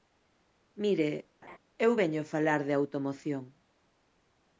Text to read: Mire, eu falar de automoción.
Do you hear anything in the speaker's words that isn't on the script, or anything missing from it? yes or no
yes